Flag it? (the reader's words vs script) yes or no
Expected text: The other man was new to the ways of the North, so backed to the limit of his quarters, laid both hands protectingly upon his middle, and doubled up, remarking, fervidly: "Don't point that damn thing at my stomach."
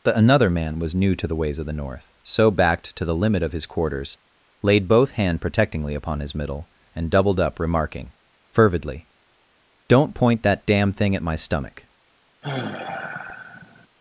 yes